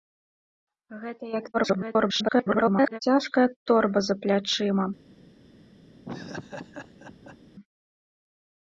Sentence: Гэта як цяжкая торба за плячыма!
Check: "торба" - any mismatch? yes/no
no